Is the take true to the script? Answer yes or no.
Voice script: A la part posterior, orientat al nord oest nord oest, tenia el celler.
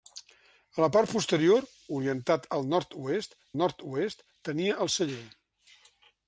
yes